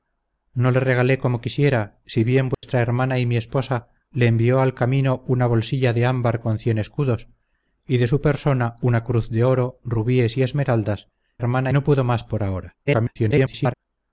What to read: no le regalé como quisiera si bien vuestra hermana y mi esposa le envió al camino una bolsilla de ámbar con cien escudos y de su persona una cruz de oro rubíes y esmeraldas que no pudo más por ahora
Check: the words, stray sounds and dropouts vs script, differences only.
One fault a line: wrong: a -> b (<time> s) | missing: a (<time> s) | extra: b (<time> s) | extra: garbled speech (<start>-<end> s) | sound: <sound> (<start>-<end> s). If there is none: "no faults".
sound: dropout (2.5-2.6 s)
wrong: que -> hermana (11.4 s)
extra: garbled speech (12.9-13.7 s)